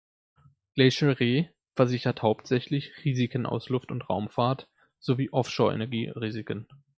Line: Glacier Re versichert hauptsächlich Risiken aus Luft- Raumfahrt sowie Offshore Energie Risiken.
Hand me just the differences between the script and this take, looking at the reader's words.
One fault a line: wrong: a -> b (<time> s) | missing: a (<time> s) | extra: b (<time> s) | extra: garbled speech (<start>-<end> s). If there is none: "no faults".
extra: und (3.9 s)